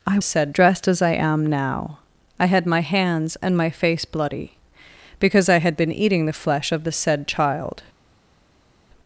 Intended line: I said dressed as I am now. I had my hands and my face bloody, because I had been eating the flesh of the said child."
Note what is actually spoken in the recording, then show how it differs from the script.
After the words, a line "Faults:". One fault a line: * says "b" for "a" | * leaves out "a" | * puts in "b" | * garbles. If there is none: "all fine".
I said dressed as I am now. I had my hands and my face bloody, because I had been eating the flesh of the said child."
Faults:
all fine